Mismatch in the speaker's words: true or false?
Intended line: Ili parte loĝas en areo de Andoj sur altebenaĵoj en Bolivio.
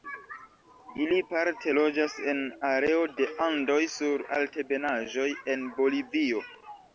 false